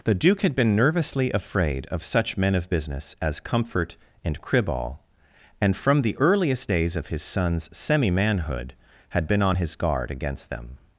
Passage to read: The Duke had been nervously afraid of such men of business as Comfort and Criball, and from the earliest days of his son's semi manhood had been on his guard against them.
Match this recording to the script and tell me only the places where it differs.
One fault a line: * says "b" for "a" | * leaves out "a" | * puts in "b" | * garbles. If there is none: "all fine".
all fine